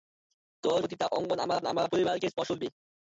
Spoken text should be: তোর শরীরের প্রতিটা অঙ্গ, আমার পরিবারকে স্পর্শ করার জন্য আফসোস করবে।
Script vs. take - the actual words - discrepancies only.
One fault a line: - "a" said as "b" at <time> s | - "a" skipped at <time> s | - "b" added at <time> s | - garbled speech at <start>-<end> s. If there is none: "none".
- "শরীরের" skipped at 0.8 s
- "আমার" added at 1.7 s
- "করার জন্য আফসোস" skipped at 2.5 s